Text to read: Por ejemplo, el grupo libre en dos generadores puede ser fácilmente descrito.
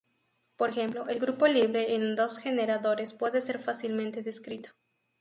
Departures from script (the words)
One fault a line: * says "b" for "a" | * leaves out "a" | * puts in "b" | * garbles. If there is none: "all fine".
all fine